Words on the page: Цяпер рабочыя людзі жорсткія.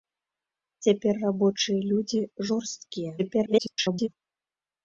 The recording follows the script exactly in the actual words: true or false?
false